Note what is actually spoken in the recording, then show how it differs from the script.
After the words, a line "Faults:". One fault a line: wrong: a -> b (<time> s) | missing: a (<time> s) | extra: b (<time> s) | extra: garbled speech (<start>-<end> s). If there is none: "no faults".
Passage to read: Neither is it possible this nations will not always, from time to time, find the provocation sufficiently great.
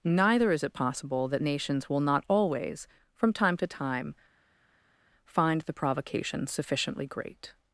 Neither is it possible that nations will not always, from time to time, find the provocation sufficiently great.
Faults:
wrong: this -> that (1.3 s)